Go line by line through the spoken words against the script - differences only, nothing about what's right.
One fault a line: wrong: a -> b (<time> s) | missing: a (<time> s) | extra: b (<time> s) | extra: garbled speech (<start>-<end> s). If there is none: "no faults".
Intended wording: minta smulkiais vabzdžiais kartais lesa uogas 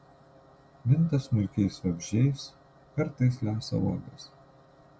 no faults